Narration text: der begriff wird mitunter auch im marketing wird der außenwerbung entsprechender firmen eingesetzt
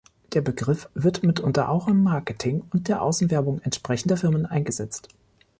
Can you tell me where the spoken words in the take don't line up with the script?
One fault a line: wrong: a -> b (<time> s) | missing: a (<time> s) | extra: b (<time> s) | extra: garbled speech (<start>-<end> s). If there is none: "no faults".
wrong: wird -> und (2.7 s)